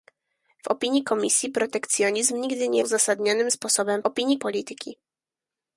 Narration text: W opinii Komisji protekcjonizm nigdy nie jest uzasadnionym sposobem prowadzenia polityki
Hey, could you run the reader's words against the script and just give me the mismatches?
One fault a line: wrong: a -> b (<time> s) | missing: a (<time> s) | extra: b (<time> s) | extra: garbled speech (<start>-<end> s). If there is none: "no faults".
missing: jest (2.8 s)
wrong: prowadzenia -> opinii (4.0 s)